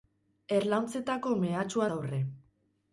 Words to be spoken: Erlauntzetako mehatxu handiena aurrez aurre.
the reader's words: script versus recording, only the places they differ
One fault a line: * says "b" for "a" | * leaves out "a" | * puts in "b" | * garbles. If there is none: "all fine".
* leaves out "handiena aurrez"